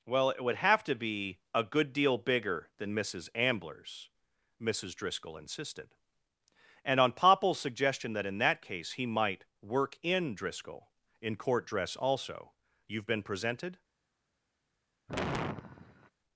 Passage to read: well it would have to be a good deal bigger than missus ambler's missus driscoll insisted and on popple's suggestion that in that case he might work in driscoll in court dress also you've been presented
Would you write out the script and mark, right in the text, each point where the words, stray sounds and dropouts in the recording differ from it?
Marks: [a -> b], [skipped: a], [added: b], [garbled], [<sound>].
well it would have to be a good deal bigger than missus ambler's missus driscoll insisted and on popple's suggestion that in that case he might work in driscoll in court dress also you've been presented [sigh]